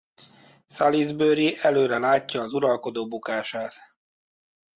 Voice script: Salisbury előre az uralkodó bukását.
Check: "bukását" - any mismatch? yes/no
no